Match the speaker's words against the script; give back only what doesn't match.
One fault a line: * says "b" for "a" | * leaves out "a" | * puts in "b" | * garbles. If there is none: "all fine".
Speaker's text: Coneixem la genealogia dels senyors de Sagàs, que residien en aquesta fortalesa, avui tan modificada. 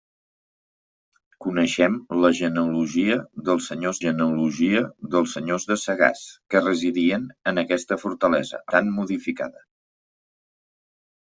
* puts in "genealogia dels senyors"
* leaves out "avui"